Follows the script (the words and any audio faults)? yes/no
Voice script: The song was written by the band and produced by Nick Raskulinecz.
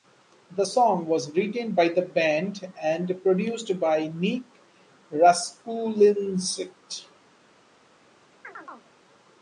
no